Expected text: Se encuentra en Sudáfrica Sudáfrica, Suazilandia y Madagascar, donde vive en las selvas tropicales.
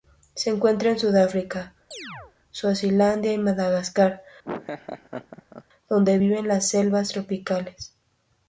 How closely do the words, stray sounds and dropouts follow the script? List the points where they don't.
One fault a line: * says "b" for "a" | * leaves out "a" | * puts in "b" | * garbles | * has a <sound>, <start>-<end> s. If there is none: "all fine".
* leaves out "Sudáfrica"
* has a chirp, 1.9-2.3 s
* has a laugh, 4.4-5.6 s